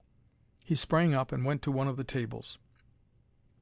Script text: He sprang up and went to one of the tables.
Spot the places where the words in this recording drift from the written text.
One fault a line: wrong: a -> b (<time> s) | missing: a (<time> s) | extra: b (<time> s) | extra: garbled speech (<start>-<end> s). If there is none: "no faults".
no faults